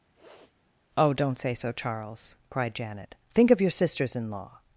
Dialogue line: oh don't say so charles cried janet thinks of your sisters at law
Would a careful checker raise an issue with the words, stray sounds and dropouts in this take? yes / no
yes